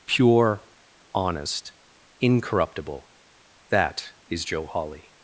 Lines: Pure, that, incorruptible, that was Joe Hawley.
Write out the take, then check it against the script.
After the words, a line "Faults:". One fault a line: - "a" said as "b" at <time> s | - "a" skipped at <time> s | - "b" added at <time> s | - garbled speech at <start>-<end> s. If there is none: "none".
Pure, honest, incorruptible, that is Joe Hawley.
Faults:
- "that" said as "honest" at 1.1 s
- "was" said as "is" at 4.3 s